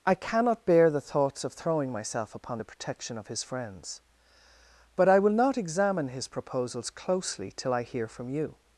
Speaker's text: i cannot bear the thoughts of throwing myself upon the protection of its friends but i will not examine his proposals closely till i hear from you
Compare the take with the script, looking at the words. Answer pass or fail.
fail